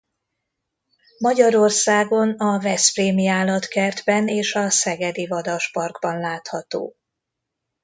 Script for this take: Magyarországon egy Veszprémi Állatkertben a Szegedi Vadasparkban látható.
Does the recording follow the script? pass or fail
fail